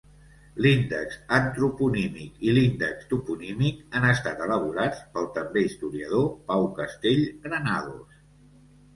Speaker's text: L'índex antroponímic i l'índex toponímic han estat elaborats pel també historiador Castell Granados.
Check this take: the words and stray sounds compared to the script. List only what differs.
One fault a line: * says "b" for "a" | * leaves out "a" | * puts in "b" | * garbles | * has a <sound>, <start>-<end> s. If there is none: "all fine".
* puts in "Pau"